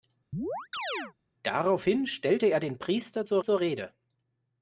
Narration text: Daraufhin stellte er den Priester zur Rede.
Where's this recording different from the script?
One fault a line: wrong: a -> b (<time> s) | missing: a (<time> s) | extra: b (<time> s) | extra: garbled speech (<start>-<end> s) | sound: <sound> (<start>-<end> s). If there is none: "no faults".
sound: chirp (0.3-1.1 s)
extra: zur (3.4 s)